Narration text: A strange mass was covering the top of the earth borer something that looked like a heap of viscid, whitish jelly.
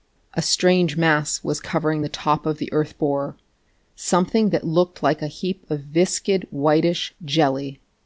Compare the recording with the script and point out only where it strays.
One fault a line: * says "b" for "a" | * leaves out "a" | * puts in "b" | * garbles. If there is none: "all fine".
all fine